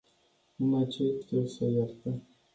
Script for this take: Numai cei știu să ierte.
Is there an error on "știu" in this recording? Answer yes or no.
no